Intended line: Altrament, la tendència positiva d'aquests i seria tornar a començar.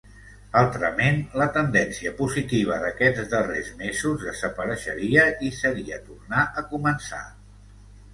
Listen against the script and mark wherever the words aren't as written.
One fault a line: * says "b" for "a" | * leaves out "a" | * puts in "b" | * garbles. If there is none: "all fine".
* puts in "darrers mesos desapareixeria"